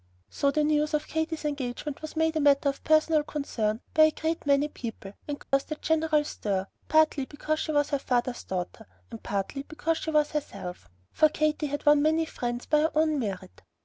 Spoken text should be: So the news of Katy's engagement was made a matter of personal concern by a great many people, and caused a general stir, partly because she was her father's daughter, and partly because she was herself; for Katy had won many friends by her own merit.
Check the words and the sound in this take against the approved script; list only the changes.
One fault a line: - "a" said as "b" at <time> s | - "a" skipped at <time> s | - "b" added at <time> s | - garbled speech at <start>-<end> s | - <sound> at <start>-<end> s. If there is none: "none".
- dropout at 5.4-5.5 s